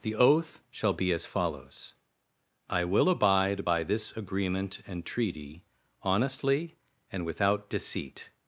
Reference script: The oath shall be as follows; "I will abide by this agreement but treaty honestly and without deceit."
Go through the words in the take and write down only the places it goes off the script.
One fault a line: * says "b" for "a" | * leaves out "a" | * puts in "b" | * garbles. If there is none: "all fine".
* says "and" for "but"